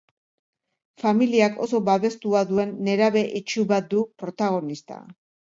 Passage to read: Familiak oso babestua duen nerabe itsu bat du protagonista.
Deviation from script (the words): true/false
false